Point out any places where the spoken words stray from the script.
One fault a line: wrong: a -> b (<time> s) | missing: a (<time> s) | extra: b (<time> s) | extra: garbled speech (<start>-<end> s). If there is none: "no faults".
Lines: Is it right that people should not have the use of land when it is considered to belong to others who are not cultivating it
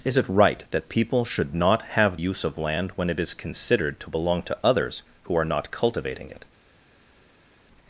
missing: the (2.2 s)